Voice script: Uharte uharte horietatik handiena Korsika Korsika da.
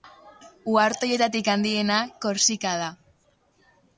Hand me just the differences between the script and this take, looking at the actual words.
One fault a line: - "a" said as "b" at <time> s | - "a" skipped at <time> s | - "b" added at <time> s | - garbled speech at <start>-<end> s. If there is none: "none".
- "uharte" skipped at 1.1 s
- "Korsika" skipped at 2.8 s